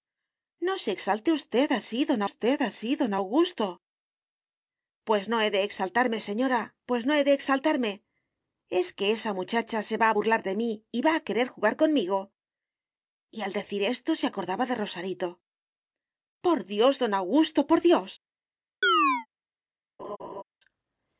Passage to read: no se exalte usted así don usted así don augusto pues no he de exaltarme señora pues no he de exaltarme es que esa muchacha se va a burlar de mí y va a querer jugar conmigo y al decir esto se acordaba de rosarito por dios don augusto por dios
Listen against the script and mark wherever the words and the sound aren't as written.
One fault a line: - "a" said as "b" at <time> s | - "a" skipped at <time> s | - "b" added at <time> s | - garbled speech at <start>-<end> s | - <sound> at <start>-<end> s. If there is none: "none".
- chirp at 18.8-19.3 s
- laugh at 20.0-20.4 s